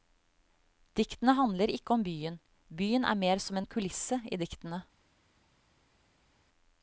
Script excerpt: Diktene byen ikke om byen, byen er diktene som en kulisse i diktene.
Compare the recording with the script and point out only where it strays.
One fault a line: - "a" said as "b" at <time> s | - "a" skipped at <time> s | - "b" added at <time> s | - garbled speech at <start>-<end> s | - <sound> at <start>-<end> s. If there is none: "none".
- "byen" said as "handler" at 1.4 s
- "diktene" said as "mer" at 3.2 s